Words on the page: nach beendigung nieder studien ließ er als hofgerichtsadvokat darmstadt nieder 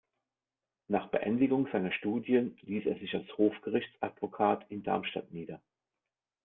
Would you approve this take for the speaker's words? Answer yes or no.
no